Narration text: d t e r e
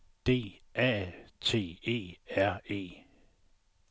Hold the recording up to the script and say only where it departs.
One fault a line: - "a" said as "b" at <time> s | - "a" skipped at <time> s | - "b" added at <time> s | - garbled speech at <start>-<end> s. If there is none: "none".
- "a" added at 0.8 s